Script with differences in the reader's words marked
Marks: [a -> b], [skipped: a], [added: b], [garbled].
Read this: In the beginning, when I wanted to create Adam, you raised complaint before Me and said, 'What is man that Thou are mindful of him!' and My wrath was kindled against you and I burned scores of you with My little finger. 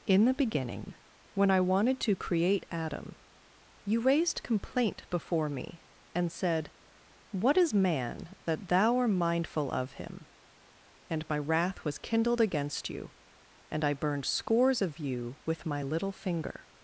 In the beginning, when I wanted to create Adam, you raised complaint before Me and said, 'What is man that Thou [are -> art] mindful of him!' and My wrath was kindled against you and I burned scores of you with My little finger.